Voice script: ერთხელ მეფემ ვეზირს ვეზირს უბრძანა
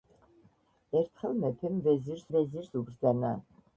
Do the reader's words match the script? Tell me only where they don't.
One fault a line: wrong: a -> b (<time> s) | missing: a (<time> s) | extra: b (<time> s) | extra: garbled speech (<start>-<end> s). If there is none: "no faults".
no faults